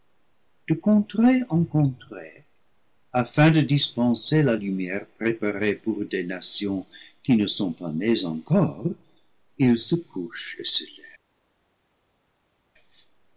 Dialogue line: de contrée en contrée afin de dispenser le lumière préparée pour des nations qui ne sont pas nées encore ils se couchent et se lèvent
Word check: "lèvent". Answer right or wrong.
right